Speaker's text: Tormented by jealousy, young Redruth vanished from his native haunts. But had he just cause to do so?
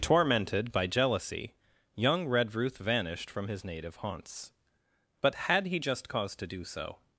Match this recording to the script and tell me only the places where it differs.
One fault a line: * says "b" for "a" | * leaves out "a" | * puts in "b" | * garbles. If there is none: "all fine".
all fine